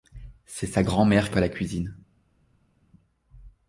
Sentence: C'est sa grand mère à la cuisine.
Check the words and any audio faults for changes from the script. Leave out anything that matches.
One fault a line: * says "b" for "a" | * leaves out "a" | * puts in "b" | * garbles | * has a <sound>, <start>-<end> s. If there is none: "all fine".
all fine